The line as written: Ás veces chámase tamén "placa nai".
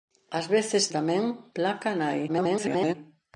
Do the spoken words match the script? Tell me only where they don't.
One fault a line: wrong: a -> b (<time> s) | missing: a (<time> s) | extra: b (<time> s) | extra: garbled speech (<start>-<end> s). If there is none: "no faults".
missing: chámase (0.8 s)
extra: garbled speech (2.3-2.9 s)